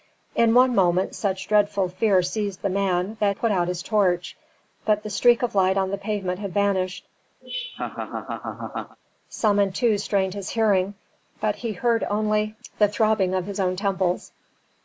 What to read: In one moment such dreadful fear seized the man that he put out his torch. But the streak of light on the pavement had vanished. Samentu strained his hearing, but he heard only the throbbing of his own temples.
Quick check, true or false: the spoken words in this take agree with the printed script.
false